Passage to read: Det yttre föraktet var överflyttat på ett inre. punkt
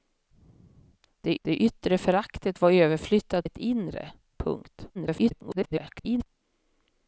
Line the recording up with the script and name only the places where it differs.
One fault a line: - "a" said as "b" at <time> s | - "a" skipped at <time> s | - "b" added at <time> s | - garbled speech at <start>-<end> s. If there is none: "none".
- "det" added at 1.4 s
- "på" skipped at 3.5 s
- garbled speech at 4.9-6.3 s